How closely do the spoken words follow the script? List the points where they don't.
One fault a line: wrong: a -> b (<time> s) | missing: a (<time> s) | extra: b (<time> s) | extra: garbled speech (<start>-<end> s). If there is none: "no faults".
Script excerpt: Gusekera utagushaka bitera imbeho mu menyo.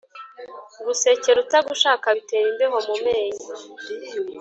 no faults